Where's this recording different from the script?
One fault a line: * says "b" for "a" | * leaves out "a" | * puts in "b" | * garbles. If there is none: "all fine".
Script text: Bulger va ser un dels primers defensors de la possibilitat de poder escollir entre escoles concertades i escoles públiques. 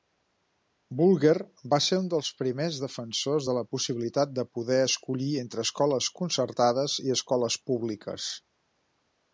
all fine